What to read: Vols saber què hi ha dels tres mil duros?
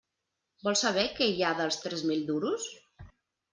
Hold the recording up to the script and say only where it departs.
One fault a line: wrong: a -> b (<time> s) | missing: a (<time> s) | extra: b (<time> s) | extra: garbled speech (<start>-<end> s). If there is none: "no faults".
no faults